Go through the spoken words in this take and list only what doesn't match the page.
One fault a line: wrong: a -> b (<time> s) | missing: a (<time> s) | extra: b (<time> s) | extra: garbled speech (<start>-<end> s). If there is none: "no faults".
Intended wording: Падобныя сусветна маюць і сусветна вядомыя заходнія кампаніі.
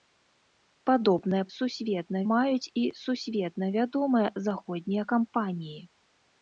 no faults